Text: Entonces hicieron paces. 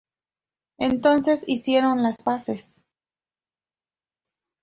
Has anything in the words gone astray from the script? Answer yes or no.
yes